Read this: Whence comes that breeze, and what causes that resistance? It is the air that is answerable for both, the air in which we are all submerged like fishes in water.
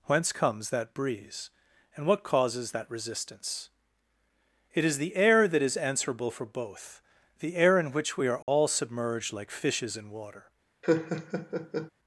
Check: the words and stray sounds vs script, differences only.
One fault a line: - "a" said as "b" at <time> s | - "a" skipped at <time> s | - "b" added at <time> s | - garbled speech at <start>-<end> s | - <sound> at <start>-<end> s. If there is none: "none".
- dropout at 8.4-8.5 s
- laugh at 10.8-11.9 s